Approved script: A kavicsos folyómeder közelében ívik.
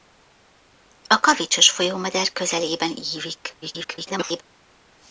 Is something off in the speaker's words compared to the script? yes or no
yes